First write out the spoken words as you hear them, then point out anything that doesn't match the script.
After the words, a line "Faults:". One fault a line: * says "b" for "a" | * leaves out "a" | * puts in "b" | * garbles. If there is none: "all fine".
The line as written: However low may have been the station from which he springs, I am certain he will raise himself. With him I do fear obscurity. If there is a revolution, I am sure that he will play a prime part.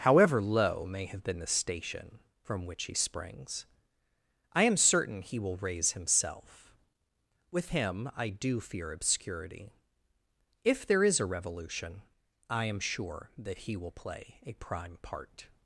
However low may have been the station from which he springs, I am certain he will raise himself. With him I do fear obscurity. If there is a revolution, I am sure that he will play a prime part.
Faults:
all fine